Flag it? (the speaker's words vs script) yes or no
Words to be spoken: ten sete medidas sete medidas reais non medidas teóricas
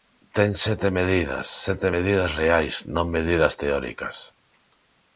no